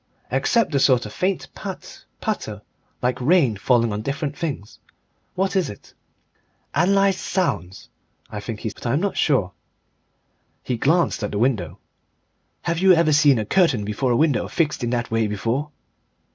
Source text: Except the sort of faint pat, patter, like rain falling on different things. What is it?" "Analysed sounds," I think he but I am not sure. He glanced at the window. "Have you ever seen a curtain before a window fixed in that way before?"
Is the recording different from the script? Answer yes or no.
no